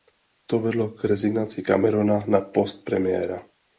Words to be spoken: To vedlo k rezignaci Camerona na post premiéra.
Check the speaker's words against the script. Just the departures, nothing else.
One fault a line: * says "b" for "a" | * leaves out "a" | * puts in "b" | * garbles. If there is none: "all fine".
all fine